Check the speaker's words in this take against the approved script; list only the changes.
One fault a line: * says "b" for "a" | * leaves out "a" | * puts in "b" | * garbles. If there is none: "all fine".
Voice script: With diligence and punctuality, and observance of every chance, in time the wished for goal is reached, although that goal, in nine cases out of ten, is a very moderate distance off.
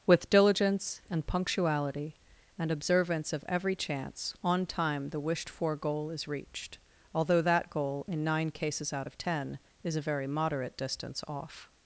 * says "on" for "in"